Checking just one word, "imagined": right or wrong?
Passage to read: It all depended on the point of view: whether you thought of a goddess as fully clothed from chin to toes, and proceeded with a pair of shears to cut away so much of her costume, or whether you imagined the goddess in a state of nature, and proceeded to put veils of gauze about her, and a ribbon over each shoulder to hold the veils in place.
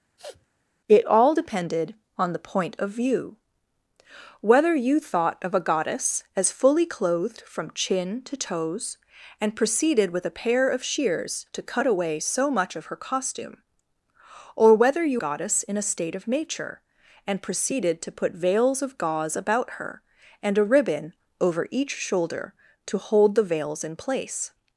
wrong